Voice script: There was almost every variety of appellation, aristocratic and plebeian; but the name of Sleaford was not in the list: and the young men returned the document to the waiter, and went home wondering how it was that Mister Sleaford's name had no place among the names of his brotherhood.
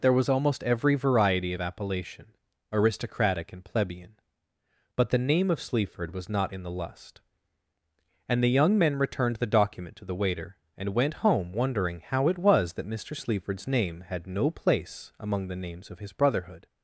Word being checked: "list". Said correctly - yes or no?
no